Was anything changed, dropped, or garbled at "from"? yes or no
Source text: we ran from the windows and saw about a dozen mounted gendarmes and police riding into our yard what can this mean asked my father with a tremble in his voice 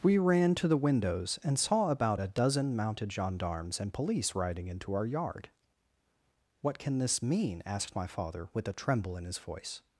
yes